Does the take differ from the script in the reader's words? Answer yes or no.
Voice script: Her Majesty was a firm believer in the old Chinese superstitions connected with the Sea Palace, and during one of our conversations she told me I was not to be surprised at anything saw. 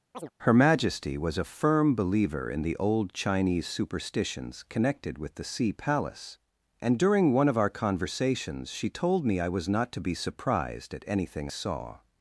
no